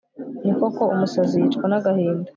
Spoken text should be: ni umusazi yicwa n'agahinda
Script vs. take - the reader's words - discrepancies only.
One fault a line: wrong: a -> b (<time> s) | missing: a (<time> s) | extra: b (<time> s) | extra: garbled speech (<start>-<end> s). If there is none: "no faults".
extra: koko (0.6 s)